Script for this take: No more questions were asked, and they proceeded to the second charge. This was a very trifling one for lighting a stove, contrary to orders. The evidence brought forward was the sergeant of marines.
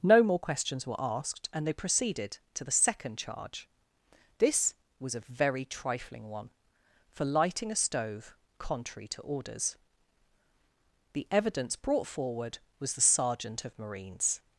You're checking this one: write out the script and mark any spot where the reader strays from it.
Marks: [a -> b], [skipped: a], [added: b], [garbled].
No more questions were asked, and they proceeded to the second charge. This was a very trifling one for lighting a stove, contrary to orders. The evidence brought forward was the sergeant of marines.